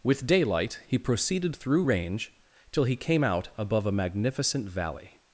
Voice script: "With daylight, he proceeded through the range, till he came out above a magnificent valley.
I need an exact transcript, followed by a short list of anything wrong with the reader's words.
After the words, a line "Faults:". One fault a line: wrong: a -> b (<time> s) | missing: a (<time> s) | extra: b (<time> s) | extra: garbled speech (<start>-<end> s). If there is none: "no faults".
"With daylight, he proceeded through range, till he came out above a magnificent valley.
Faults:
missing: the (1.9 s)